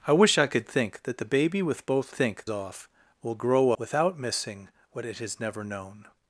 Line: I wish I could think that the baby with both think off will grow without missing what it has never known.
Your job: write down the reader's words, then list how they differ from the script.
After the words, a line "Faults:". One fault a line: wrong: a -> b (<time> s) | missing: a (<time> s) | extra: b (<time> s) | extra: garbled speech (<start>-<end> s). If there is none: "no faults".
I wish I could think that the baby with both think off will grow without missing what it has never known.
Faults:
no faults